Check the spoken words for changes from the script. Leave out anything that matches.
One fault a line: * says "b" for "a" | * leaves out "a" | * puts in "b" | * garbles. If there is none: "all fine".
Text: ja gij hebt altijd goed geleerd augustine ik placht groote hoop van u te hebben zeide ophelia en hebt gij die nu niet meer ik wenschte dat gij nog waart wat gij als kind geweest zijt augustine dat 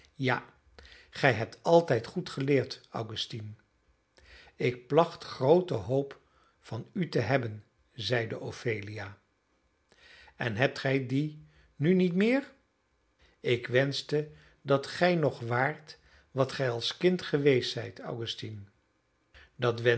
all fine